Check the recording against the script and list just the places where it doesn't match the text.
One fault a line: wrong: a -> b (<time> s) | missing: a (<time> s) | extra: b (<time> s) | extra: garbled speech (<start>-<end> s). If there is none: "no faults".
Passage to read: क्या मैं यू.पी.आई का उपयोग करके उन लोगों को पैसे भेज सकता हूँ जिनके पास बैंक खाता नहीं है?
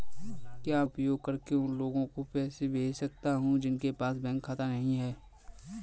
missing: मैं यू.पी.आई का (0.8 s)